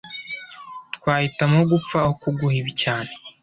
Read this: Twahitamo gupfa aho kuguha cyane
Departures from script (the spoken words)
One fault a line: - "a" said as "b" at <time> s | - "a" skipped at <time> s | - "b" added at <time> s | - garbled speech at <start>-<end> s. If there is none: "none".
- "ibi" added at 2.6 s